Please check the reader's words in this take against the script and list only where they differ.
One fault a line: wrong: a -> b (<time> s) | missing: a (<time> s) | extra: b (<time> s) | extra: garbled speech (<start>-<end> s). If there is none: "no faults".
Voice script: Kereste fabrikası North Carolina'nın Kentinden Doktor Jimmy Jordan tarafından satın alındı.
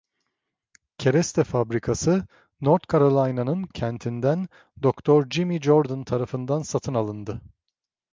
no faults